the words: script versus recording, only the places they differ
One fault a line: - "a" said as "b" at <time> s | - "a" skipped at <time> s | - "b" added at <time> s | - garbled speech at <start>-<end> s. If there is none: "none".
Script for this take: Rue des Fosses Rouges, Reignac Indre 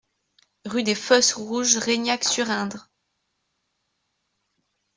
- "sur" added at 2.2 s